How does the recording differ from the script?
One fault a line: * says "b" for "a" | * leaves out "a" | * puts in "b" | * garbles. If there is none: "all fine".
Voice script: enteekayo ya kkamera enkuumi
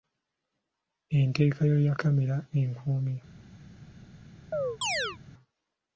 all fine